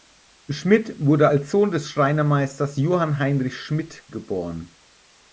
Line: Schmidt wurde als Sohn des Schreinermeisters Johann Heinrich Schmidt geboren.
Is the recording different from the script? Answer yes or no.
no